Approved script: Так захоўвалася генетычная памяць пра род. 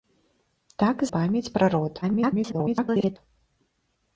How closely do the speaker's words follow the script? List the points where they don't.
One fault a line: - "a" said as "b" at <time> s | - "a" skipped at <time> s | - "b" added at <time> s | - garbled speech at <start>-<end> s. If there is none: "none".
- "захоўвалася генетычная" skipped at 1.0 s
- garbled speech at 2.0-3.2 s